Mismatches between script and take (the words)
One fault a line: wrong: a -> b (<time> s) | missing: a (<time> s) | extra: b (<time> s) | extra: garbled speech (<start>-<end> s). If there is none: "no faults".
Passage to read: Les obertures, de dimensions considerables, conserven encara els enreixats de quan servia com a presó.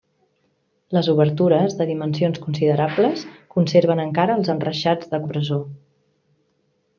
missing: quan servia com (5.2 s)